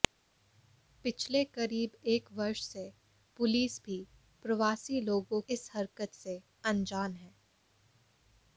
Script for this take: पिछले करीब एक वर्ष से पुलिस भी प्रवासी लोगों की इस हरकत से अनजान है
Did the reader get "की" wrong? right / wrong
wrong